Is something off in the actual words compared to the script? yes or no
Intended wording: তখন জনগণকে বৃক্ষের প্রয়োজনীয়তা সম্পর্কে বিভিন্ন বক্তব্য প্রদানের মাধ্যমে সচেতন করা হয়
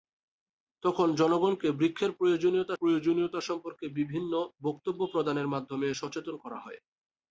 yes